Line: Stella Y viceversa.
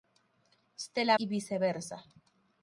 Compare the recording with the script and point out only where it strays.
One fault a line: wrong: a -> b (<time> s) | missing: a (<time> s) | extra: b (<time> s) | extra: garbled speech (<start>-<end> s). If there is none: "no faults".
no faults